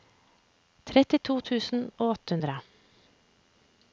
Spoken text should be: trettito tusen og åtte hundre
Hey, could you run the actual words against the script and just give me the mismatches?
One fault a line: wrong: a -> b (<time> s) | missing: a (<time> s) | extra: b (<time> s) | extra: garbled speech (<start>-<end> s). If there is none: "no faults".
no faults